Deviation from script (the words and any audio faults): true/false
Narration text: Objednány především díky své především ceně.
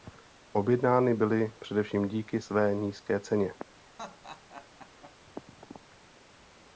true